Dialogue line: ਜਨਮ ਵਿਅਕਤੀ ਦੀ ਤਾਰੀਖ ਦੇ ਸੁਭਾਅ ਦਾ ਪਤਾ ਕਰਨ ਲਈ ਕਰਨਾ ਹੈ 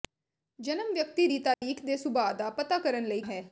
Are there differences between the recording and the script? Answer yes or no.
yes